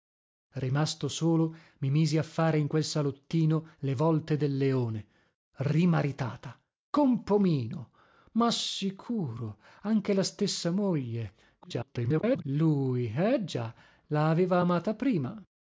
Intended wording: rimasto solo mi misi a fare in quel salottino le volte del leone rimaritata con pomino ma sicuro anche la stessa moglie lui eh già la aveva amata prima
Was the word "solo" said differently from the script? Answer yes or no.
no